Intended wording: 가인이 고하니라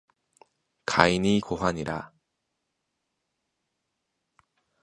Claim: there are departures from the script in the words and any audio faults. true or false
false